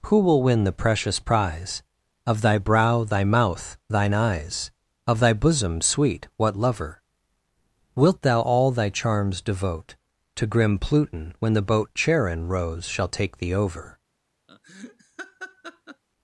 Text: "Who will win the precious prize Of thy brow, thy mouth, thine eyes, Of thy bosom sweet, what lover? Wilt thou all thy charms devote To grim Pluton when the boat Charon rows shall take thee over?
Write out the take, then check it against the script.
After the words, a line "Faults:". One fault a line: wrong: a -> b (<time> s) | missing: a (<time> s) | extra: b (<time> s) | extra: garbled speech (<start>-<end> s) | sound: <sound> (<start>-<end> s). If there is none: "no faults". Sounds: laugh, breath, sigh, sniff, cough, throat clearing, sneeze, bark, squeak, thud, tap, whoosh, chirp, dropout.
"Who will win the precious prize Of thy brow, thy mouth, thine eyes, Of thy bosom sweet, what lover? Wilt thou all thy charms devote To grim Pluton when the boat Charon rows shall take thee over?
Faults:
sound: laugh (14.5-16.0 s)